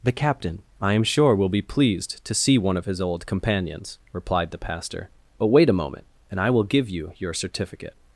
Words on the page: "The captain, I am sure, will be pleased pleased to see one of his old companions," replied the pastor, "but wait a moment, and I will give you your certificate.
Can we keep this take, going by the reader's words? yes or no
no